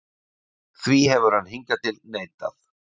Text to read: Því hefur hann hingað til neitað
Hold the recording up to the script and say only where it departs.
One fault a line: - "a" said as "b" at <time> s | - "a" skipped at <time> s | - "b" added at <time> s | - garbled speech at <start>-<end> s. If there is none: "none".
none